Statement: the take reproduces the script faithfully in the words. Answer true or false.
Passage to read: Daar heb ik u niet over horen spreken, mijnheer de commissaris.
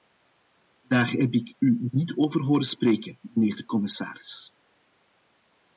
true